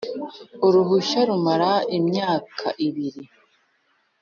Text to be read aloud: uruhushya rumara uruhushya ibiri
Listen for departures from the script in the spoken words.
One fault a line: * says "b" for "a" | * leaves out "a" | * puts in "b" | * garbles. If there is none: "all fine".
* says "imyaka" for "uruhushya"